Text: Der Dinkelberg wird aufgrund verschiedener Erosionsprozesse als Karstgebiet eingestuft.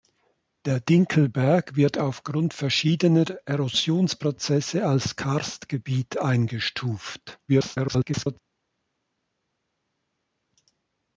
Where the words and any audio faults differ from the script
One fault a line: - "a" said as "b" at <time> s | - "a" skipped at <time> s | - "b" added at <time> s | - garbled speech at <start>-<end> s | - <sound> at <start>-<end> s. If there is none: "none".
- garbled speech at 7.5-8.4 s